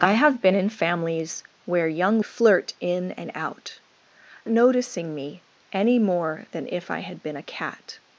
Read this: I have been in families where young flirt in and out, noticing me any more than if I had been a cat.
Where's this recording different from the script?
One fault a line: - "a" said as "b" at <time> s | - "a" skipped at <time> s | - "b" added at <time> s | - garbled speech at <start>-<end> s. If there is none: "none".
none